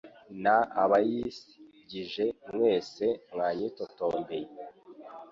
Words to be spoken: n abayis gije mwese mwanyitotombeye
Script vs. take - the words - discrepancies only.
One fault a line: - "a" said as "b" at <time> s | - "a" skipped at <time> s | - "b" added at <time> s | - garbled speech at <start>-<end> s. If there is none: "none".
none